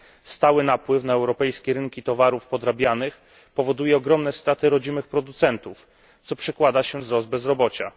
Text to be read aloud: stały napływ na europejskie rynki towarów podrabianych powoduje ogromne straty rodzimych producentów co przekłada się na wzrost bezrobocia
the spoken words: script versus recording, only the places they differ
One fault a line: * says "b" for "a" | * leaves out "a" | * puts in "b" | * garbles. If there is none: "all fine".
* leaves out "na"